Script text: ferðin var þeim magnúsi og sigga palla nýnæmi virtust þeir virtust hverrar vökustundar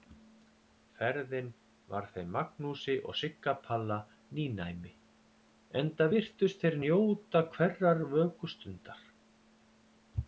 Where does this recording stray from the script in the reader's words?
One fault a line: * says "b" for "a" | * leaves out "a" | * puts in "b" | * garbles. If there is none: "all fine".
* puts in "enda"
* says "njóta" for "virtust"